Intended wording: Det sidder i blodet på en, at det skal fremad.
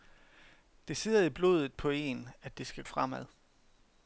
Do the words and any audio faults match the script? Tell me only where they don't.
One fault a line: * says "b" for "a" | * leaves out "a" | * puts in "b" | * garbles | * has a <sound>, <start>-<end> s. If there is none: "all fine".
all fine